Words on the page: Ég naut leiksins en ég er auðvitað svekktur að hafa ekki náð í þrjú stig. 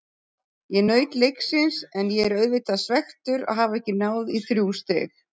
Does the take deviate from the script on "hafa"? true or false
false